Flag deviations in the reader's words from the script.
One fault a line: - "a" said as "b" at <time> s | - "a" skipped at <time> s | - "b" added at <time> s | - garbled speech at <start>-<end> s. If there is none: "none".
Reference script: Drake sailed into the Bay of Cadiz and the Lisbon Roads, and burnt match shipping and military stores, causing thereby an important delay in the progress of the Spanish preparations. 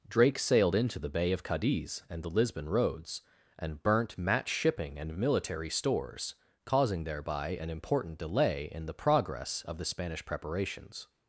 none